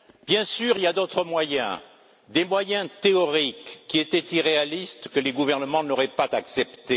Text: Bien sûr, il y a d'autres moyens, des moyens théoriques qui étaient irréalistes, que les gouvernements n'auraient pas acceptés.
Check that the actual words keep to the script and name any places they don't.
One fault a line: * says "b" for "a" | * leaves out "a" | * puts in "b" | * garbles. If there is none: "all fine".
all fine